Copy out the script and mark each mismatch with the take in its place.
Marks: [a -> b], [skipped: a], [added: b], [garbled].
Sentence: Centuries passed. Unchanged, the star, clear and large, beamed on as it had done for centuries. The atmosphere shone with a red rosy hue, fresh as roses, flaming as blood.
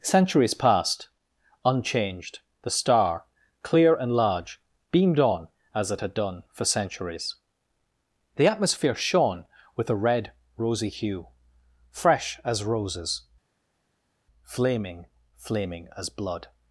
Centuries passed. Unchanged, the star, clear and large, beamed on as it had done for centuries. The atmosphere shone with a red rosy hue, fresh as roses, flaming [added: flaming] as blood.